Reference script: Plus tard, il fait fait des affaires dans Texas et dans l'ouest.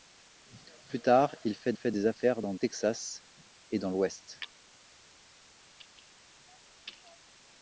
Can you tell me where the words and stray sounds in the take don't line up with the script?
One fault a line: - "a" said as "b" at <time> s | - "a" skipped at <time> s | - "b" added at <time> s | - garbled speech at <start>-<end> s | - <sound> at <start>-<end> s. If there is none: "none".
none